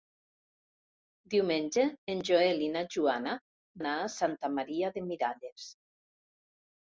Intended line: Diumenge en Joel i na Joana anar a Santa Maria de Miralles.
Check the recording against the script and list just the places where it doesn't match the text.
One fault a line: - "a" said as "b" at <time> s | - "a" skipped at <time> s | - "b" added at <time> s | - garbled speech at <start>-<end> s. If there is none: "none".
none